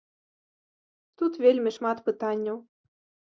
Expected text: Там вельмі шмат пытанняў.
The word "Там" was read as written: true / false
false